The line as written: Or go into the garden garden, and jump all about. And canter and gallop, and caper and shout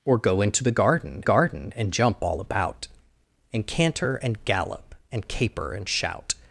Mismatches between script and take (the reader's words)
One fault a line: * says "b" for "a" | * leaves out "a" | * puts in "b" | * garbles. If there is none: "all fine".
all fine